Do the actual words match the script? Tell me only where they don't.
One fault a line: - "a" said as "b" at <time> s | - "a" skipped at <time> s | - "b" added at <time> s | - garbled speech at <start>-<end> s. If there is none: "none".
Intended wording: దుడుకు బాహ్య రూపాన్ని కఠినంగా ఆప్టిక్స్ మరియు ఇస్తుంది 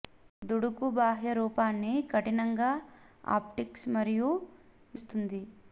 none